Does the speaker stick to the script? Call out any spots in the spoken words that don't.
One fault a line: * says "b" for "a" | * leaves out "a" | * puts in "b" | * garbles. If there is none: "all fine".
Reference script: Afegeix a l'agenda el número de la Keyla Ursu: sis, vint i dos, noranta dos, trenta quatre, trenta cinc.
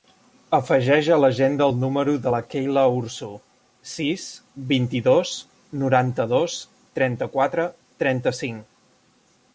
all fine